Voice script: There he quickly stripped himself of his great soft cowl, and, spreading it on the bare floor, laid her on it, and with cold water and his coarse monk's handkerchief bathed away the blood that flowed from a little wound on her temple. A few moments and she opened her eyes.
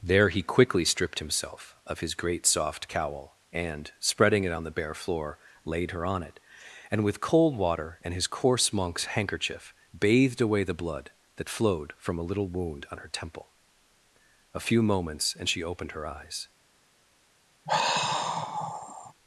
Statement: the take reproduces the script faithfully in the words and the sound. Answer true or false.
false